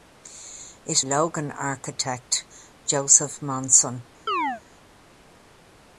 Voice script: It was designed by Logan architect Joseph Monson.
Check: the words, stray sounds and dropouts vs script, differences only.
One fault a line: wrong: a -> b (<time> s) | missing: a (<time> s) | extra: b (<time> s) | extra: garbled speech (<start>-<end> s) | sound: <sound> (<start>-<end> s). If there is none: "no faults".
missing: was designed by (1.0 s)
sound: chirp (4.3-4.6 s)